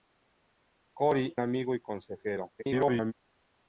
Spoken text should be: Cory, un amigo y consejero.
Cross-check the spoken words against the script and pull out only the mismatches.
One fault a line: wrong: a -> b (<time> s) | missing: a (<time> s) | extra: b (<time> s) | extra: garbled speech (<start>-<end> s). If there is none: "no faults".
missing: un (1.4 s)
extra: garbled speech (2.6-3.1 s)